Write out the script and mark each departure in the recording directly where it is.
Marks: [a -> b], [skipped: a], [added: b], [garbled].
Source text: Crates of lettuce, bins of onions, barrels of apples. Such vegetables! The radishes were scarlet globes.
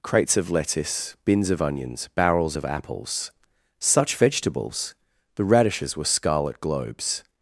Crates of lettuce, bins of onions, barrels of apples. Such vegetables! The radishes were scarlet globes.